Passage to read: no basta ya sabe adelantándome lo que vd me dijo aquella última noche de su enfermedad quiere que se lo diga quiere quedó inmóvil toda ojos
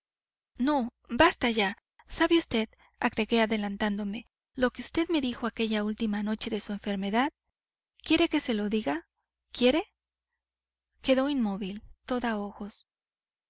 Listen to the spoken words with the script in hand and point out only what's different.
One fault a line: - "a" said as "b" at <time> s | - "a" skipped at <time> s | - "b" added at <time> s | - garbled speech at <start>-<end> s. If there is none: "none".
- "vd agregué" added at 2.4 s